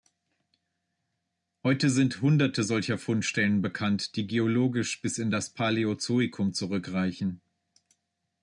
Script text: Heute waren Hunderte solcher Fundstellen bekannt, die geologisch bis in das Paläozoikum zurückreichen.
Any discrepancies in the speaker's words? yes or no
yes